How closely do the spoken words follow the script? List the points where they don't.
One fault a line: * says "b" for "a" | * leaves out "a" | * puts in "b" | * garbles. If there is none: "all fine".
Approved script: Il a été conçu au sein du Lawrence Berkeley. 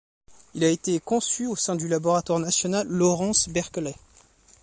* puts in "Laboratoire national"